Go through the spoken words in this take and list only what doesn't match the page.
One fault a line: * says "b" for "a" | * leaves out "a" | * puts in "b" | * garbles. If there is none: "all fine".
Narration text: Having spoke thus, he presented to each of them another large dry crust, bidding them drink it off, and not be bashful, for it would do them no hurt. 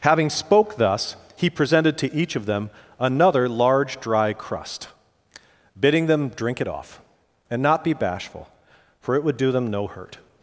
all fine